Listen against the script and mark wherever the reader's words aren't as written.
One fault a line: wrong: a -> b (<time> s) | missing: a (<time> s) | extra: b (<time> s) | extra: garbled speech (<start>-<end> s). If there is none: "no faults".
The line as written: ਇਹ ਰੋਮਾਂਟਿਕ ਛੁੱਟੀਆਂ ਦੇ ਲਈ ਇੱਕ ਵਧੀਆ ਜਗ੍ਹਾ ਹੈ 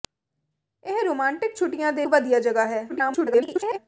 missing: ਲਈ ਇੱਕ (2.0 s)
extra: garbled speech (2.9-3.8 s)